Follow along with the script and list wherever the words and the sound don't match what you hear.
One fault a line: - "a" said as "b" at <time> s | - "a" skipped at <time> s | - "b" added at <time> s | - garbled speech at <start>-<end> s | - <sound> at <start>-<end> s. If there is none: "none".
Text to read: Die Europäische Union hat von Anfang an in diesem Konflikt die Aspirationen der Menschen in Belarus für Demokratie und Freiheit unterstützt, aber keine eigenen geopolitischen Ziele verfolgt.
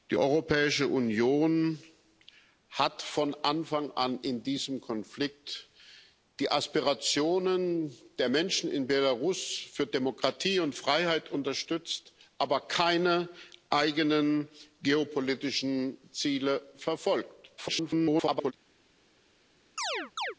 - garbled speech at 17.6-18.5 s
- chirp at 19.8-20.4 s